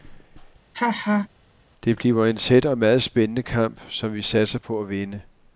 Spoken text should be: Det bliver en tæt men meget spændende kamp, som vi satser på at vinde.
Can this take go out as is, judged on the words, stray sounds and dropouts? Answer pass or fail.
fail